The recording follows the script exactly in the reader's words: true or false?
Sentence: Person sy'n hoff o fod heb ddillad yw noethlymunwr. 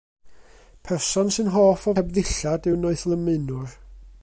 false